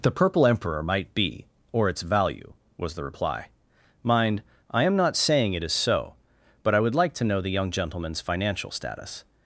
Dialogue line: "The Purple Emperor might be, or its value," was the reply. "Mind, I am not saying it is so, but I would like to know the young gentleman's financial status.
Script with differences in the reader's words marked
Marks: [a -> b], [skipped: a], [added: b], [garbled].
"The Purple Emperor might be, or its value," was the reply. "Mind, I am not saying it is so, but I would like to know the young gentleman's financial status.